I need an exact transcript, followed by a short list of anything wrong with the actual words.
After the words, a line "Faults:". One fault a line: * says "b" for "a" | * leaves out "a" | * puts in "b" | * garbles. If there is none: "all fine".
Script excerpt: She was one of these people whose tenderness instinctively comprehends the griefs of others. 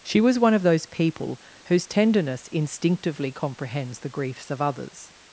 She was one of those people whose tenderness instinctively comprehends the griefs of others.
Faults:
* says "those" for "these"